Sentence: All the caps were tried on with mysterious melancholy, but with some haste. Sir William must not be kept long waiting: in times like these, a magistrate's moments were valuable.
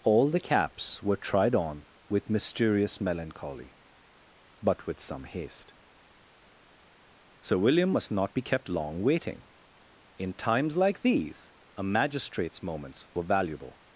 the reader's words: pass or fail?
pass